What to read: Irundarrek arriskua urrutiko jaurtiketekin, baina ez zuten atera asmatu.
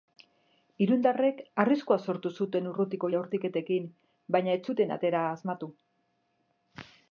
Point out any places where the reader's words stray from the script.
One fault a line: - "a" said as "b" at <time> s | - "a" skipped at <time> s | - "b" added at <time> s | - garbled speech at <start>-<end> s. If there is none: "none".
- "sortu zuten" added at 2.0 s